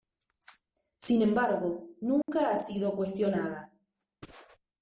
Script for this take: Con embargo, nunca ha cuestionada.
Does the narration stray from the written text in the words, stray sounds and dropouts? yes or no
yes